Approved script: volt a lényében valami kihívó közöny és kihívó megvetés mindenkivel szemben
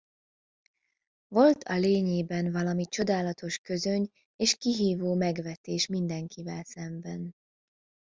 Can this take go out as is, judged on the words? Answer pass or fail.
fail